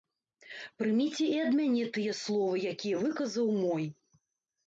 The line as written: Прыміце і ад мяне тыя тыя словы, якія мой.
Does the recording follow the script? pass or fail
fail